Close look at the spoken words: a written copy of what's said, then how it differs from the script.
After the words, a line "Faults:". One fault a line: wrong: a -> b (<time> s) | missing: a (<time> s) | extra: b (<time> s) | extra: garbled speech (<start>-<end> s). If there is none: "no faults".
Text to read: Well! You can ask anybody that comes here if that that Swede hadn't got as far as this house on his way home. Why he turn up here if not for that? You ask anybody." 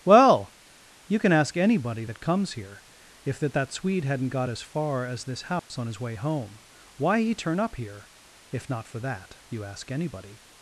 Well! You can ask anybody that comes here if that that Swede hadn't got as far as this house on his way home. Why he turn up here if not for that? You ask anybody."
Faults:
no faults